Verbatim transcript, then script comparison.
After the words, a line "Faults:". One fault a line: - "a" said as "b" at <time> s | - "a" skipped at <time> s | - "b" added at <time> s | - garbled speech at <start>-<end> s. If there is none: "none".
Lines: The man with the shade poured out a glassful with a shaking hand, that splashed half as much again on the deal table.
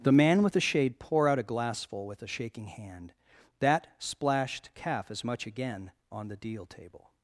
The man with the shade pour out a glassful with a shaking hand, that splashed calf as much again on the deal table.
Faults:
- "poured" said as "pour" at 1.0 s
- "half" said as "calf" at 4.7 s